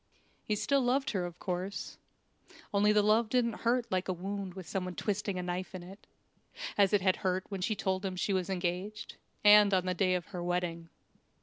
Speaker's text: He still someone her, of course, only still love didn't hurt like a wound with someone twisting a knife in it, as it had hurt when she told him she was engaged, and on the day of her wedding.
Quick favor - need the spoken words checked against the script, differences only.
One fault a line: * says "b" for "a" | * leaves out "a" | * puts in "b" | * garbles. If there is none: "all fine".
* says "loved" for "someone"
* says "the" for "still"